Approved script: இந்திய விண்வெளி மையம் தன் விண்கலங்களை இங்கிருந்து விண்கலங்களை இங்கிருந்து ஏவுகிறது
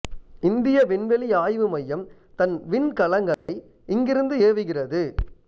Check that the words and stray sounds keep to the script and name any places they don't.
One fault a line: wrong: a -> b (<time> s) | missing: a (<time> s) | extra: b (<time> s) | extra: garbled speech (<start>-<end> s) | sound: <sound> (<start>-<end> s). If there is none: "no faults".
extra: ஆய்வு (1.3 s)
sound: dropout (3.3-3.5 s)
missing: விண்கலங்களை இங்கிருந்து (4.4 s)